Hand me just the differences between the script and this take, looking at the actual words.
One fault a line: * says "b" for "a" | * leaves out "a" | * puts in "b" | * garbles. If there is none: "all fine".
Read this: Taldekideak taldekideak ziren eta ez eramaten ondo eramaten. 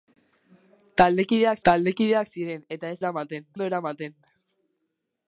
all fine